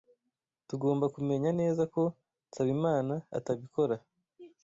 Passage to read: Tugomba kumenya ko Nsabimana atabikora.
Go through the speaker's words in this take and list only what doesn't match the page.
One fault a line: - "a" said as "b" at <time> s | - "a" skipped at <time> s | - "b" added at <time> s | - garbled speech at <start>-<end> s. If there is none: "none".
- "neza" added at 1.6 s